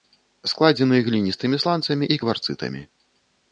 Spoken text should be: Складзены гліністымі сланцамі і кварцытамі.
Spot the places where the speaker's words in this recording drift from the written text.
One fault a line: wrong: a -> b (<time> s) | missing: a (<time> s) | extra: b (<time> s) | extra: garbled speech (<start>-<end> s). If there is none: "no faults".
no faults